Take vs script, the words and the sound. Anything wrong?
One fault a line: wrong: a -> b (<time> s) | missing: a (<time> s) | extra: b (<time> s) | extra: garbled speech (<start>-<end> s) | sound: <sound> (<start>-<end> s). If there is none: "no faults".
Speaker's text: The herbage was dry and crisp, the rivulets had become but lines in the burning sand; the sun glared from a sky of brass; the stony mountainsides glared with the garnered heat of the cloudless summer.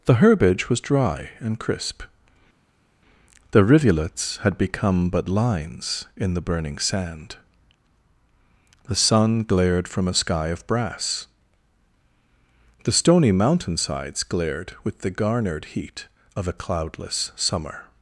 wrong: the -> a (16.5 s)